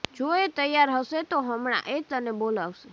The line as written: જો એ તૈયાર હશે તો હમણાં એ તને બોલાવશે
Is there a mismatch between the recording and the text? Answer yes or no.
no